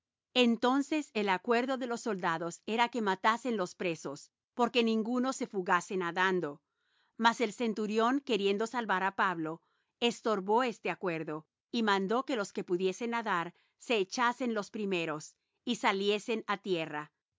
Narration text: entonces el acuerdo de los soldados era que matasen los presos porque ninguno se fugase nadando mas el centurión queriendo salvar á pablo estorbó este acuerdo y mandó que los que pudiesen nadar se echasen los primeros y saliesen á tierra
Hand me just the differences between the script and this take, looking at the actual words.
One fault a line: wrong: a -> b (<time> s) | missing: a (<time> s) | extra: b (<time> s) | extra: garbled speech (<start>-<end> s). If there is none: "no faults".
no faults